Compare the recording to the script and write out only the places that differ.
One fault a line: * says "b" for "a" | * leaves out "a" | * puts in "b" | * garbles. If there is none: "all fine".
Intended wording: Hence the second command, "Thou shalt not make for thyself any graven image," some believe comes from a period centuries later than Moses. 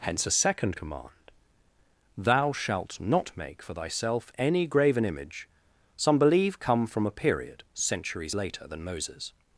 * says "a" for "the"
* says "come" for "comes"